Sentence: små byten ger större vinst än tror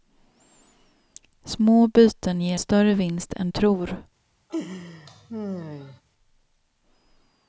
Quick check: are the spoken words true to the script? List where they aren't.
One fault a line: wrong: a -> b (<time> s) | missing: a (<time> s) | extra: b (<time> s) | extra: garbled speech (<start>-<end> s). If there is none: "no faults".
no faults